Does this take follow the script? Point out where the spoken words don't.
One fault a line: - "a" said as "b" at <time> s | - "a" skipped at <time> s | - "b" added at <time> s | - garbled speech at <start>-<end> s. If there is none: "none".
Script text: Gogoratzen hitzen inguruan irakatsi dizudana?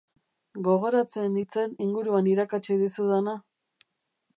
none